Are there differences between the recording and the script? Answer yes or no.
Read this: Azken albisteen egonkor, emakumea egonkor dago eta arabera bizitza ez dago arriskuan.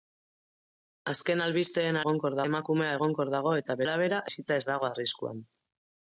no